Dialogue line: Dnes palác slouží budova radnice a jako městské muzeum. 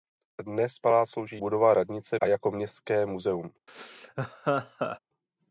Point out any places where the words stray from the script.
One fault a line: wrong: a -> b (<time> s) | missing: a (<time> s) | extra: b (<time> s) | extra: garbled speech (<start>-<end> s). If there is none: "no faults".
no faults